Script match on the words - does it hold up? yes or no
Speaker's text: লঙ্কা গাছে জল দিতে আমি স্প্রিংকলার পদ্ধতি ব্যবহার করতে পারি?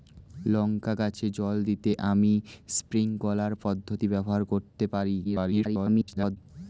no